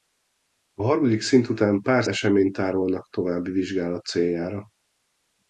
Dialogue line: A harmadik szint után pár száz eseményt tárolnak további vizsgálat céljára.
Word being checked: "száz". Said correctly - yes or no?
no